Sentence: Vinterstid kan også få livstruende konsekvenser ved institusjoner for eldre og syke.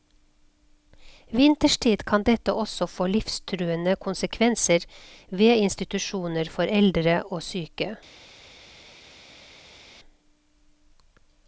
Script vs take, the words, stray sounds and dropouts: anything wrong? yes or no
yes